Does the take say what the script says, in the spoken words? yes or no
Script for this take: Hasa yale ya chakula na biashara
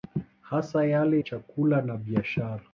no